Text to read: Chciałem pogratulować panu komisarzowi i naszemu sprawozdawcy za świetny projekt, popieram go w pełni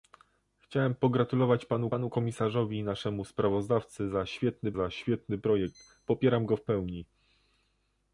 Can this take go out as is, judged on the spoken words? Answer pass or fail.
fail